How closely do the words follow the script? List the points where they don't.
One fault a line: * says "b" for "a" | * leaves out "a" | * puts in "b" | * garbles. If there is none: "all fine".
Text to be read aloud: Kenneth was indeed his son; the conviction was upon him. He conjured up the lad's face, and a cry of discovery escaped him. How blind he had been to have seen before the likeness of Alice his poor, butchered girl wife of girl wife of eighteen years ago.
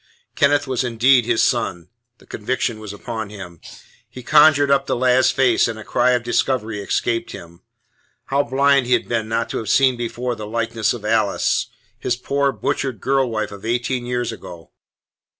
* puts in "not"
* leaves out "girl wife of"